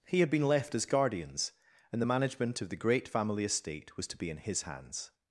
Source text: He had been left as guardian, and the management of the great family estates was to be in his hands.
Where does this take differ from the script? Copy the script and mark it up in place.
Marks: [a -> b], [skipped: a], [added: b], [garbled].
He had been left as [guardian, -> guardians] and the management of the great family [estates -> estate] was to be in his hands.